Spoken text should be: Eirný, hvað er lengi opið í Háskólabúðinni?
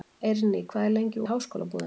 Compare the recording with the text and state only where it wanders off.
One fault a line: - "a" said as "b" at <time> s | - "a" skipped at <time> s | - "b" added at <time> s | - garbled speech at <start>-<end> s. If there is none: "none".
- "opið" skipped at 1.2 s